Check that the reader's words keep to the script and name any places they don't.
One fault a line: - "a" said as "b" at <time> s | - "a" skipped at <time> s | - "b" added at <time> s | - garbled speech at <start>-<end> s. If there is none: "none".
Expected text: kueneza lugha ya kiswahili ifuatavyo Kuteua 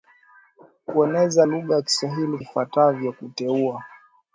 none